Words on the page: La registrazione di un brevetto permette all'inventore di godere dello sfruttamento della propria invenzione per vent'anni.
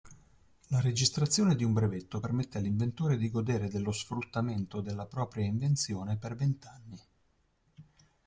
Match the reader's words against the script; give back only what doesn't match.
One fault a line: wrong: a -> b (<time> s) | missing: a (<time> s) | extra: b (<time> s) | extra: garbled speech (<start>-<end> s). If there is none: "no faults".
no faults